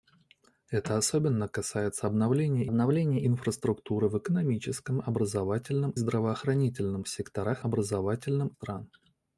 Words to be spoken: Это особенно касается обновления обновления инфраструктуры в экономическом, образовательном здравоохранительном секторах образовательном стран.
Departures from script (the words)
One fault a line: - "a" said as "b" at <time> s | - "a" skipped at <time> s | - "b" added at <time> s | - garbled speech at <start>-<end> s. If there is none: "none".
none